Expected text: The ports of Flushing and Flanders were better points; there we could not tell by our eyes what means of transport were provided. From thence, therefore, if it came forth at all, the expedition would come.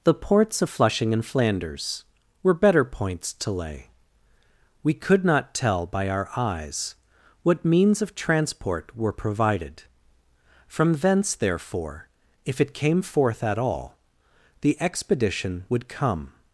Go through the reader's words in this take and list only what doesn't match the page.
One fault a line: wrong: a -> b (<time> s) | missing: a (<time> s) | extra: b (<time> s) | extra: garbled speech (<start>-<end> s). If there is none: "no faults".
wrong: there -> to lay (3.3 s)